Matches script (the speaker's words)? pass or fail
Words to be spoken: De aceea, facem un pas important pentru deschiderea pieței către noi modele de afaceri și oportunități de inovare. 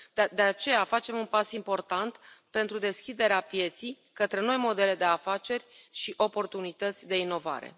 pass